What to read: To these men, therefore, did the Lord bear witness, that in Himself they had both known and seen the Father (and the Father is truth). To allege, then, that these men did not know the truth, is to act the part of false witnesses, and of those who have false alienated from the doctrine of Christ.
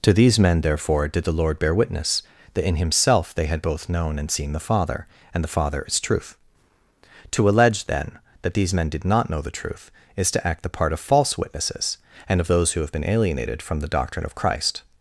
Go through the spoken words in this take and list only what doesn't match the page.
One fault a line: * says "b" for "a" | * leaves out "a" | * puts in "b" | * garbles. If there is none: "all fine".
* says "been" for "false"